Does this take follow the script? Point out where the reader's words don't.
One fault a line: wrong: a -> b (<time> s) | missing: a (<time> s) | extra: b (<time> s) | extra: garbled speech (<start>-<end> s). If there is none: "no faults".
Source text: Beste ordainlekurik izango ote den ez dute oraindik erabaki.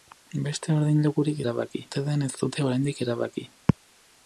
wrong: izango -> erabaki (1.4 s)